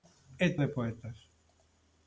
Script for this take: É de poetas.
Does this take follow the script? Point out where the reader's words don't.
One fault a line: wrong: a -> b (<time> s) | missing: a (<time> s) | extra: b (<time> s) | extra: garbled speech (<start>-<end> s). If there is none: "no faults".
no faults